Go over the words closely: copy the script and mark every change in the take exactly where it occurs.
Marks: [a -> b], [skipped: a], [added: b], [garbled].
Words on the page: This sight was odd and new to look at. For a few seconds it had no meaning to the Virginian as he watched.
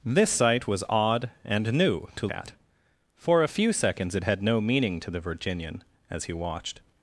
This sight was odd and new to [skipped: look] at. For a few seconds it had no meaning to the Virginian as he watched.